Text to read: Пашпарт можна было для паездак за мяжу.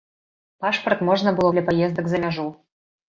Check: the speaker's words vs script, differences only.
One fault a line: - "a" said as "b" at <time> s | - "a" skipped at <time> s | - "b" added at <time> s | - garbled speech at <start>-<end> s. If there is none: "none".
none